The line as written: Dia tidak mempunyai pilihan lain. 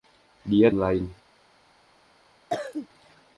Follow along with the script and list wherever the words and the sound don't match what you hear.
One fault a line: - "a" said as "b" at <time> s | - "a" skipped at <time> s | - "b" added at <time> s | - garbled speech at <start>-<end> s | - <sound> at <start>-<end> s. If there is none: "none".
- "tidak mempunyai pilihan" skipped at 0.7 s
- cough at 2.5-2.9 s